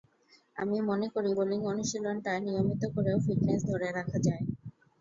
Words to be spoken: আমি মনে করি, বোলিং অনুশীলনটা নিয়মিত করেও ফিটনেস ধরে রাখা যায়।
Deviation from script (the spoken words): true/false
false